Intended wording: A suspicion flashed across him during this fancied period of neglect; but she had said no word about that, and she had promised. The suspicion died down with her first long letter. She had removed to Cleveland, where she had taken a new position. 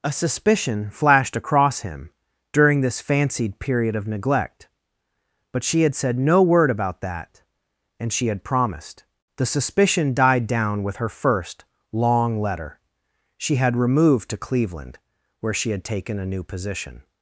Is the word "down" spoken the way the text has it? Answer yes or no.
yes